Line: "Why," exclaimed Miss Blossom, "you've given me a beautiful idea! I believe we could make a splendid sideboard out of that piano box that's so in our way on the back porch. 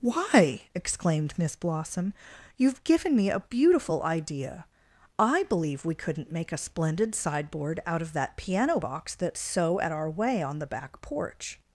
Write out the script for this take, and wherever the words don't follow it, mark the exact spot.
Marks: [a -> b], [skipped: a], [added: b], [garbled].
"Why," exclaimed Miss Blossom, "you've given me a beautiful idea! I believe we [could -> couldn't] make a splendid sideboard out of that piano box that's so [in -> at] our way on the back porch.